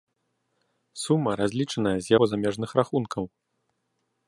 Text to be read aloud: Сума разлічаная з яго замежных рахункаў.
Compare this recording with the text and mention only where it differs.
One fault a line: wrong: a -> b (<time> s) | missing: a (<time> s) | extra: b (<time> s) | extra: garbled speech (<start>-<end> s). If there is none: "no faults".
no faults